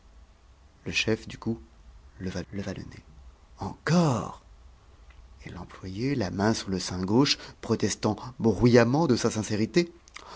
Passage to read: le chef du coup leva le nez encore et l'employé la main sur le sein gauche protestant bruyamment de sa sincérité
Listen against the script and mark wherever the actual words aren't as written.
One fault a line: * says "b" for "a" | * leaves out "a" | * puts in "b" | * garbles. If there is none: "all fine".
* puts in "leva"